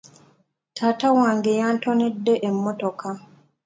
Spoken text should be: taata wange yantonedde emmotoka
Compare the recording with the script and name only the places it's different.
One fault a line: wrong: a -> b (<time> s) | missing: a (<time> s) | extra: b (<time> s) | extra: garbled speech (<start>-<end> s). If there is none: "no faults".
no faults